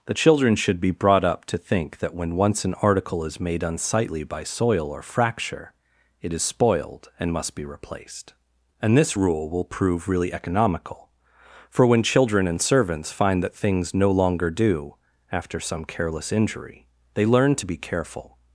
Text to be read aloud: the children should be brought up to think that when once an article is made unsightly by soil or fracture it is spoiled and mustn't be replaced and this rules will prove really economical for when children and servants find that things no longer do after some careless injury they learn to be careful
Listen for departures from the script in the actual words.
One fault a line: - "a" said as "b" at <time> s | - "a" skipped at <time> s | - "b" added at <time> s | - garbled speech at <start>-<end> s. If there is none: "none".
- "mustn't" said as "must" at 7.3 s
- "rules" said as "rule" at 9.1 s